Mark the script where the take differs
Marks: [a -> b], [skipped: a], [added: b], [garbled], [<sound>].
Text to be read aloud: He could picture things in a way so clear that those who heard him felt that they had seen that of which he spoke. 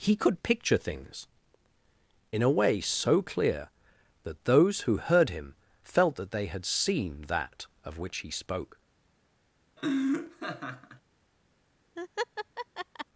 He could picture things in a way so clear that those who heard him felt that they had seen that of which he spoke. [laugh] [laugh]